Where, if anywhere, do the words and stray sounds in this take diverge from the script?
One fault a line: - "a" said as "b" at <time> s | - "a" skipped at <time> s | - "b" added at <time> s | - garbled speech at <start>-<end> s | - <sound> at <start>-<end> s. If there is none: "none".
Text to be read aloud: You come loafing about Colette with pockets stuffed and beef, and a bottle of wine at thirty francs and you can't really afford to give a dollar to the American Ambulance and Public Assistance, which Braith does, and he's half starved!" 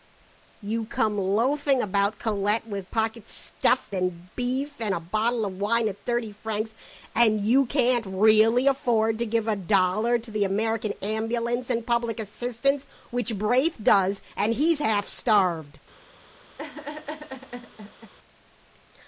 - laugh at 16.6-18.1 s